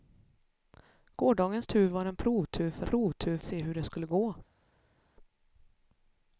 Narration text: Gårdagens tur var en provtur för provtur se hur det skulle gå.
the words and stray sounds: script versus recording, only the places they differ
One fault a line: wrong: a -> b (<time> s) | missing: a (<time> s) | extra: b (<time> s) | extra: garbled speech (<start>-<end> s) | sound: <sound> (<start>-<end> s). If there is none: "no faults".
no faults